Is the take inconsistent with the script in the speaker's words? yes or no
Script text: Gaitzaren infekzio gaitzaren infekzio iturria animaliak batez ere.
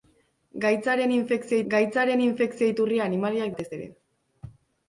no